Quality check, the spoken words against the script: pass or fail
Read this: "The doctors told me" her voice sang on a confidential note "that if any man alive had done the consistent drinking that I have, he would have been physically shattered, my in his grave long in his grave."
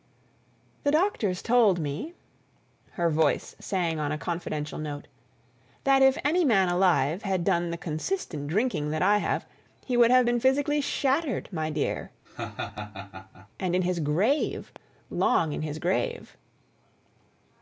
fail